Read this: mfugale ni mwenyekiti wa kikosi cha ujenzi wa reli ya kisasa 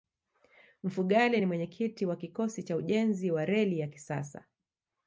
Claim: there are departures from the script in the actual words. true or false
false